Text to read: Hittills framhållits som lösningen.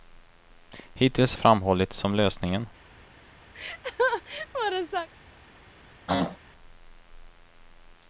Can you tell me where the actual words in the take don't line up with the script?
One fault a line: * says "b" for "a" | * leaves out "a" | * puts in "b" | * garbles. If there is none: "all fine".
all fine